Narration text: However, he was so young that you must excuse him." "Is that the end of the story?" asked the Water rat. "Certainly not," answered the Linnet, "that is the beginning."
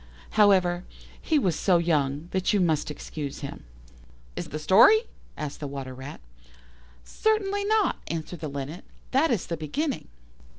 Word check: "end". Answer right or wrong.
wrong